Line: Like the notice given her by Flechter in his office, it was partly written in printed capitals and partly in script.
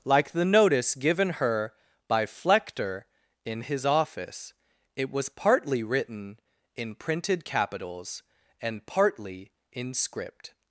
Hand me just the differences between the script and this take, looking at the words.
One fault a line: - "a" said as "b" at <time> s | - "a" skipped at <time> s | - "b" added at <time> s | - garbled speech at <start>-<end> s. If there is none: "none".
none